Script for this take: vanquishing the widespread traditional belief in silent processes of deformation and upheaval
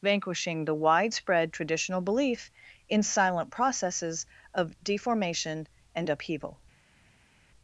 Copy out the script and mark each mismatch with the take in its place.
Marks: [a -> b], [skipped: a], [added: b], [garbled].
vanquishing the widespread traditional belief in silent processes of deformation and upheaval